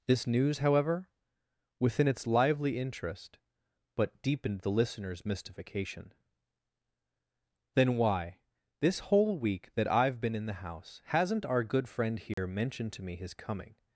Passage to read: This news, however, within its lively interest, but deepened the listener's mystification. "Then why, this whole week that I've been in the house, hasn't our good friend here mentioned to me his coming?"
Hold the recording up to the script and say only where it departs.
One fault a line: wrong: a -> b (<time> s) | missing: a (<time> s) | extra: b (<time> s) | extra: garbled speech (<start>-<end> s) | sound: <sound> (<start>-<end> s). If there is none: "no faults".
sound: dropout (12.3-12.4 s)